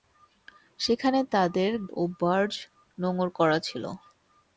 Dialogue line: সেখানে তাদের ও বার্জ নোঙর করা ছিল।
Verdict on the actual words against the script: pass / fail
pass